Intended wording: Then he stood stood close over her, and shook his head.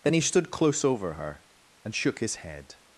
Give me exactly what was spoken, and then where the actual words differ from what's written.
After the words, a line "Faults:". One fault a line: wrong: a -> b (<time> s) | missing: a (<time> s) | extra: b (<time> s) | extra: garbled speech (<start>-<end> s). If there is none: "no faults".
Then he stood close over her, and shook his head.
Faults:
missing: stood (0.5 s)